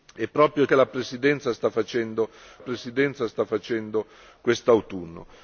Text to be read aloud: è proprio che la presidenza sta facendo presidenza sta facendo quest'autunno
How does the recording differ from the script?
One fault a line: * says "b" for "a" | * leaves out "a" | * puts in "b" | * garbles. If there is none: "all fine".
all fine